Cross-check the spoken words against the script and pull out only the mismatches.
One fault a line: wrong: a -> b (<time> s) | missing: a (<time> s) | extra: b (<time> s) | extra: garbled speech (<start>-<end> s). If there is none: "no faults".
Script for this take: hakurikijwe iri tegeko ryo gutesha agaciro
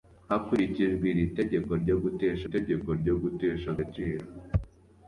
extra: tegeko ryo gutesha (2.5 s)